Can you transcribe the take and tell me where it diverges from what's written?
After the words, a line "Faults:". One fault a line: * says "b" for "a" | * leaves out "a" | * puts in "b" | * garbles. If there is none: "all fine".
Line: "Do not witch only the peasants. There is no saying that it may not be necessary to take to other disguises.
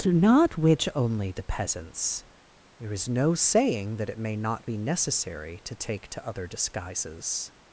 "Do not witch only the peasants. There is no saying that it may not be necessary to take to other disguises.
Faults:
all fine